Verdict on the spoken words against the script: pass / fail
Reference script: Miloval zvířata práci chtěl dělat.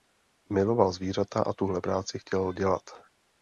fail